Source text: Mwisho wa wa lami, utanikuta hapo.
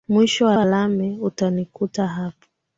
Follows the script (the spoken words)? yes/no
yes